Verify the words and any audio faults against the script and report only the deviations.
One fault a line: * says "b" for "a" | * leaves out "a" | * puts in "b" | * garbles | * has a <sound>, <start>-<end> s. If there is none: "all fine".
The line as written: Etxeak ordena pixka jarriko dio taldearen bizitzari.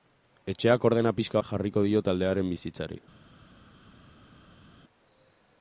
all fine